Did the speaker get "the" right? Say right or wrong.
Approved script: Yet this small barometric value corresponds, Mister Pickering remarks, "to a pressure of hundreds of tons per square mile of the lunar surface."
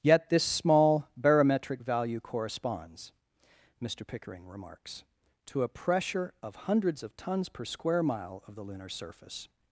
right